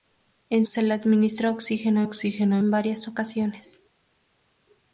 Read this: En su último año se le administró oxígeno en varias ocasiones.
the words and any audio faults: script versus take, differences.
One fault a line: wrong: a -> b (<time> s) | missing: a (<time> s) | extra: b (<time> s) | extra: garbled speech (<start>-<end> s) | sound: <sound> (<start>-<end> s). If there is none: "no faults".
missing: su último año (0.7 s)
extra: oxígeno (2.0 s)